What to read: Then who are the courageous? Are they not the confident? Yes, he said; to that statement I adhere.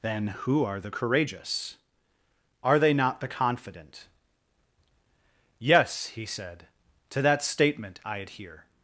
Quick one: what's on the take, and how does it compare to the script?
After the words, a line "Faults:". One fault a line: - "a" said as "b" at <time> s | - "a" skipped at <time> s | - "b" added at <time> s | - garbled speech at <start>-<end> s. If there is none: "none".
Then who are the courageous? Are they not the confident? Yes, he said; to that statement I adhere.
Faults:
none